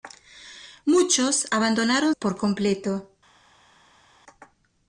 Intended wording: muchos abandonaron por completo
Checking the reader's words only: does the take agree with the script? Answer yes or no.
yes